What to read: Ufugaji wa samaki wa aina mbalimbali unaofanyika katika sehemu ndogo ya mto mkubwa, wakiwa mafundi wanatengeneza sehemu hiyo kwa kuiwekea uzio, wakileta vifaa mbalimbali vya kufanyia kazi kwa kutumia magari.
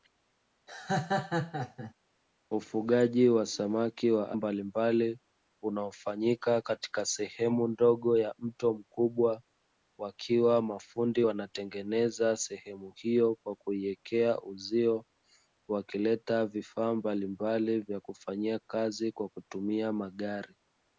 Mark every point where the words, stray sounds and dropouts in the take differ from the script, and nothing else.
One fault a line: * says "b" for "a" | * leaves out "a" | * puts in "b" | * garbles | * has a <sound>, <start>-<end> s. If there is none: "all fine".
* has a laugh, 0.7-1.9 s
* leaves out "aina"